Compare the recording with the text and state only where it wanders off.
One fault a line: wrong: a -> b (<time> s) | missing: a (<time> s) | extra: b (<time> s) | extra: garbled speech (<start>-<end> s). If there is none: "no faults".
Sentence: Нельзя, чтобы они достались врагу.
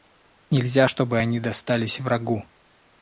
no faults